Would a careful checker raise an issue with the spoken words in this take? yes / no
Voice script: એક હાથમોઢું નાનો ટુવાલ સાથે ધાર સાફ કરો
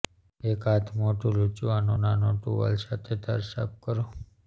yes